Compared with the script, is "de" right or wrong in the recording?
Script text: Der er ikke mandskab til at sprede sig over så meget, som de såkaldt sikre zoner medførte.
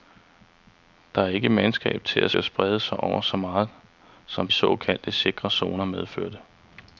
wrong